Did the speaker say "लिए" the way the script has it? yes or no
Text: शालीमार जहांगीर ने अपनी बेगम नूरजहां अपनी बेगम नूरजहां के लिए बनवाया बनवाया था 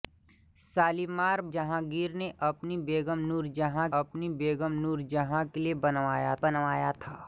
yes